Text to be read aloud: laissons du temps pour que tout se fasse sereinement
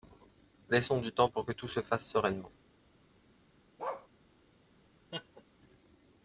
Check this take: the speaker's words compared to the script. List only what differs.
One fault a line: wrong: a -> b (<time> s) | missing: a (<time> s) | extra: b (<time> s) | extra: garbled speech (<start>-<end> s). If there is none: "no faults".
no faults